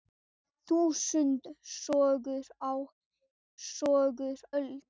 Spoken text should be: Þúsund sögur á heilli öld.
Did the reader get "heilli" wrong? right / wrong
wrong